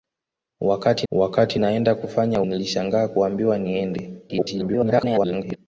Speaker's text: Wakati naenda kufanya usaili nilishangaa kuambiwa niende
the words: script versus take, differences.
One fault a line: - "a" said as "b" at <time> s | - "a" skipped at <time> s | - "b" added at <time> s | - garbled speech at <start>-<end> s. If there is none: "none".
- "wakati" added at 1.1 s
- "usaili" skipped at 2.4 s
- garbled speech at 4.3-5.6 s